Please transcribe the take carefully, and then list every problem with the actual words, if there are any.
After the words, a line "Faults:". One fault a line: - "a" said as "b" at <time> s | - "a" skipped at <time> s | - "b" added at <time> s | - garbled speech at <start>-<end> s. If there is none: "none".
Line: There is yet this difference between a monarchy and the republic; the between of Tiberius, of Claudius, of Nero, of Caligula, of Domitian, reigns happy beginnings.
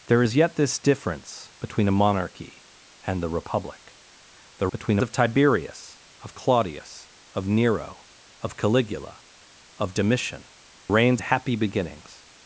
There is yet this difference between a monarchy and the republic; the between of Tiberius, of Claudius, of Nero, of Caligula, of Domitian, reigns happy beginnings.
Faults:
none